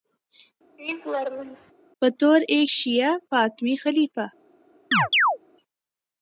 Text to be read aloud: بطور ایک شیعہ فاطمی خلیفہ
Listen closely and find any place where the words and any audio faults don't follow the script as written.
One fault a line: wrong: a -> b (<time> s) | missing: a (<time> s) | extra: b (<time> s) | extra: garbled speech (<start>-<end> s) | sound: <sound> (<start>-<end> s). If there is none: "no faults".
sound: laugh (0.8-1.7 s)
sound: chirp (4.9-5.4 s)